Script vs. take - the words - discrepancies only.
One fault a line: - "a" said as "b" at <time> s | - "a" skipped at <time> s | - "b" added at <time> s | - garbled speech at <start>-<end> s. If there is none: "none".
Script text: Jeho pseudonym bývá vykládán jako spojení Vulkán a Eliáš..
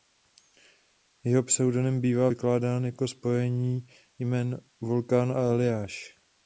- "jmen" added at 4.2 s